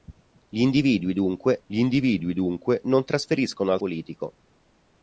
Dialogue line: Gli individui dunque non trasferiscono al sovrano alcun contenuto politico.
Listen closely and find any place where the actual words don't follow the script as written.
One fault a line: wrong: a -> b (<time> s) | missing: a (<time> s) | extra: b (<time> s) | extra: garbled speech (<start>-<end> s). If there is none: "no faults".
extra: gli individui dunque (1.7 s)
missing: sovrano alcun contenuto (3.8 s)